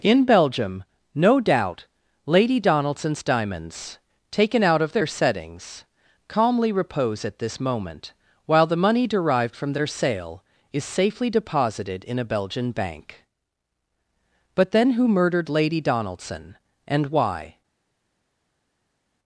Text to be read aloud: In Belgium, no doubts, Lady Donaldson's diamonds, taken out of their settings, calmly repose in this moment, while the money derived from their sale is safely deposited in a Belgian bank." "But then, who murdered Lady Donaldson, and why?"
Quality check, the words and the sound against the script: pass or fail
fail